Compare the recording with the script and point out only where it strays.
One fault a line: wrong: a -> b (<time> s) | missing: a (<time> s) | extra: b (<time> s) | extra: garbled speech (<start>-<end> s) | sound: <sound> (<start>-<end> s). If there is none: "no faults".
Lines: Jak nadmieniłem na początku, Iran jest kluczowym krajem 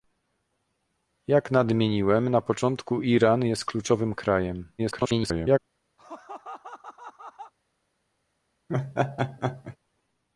extra: garbled speech (4.8-5.6 s)
sound: laugh (6.0-7.5 s)
sound: laugh (8.7-9.8 s)